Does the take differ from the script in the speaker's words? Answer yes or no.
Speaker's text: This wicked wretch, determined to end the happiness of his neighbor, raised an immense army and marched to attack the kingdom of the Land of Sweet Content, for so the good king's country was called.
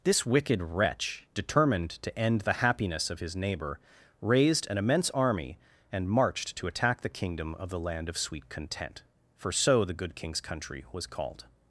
no